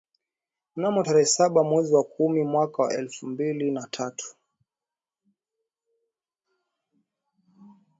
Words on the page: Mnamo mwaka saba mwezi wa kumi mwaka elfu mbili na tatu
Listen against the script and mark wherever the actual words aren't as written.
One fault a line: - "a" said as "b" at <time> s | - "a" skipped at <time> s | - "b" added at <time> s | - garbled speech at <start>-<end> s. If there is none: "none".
- "mwaka" said as "tarehe" at 1.0 s
- "wa" added at 2.8 s